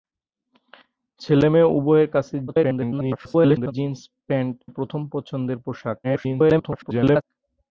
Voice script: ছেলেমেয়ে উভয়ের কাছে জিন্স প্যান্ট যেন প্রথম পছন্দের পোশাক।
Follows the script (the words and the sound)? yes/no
no